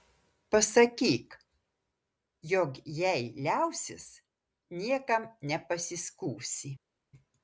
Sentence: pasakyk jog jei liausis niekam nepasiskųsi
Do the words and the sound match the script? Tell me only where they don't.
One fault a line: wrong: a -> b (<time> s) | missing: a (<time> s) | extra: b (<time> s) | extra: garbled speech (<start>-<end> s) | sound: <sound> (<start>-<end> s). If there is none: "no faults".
no faults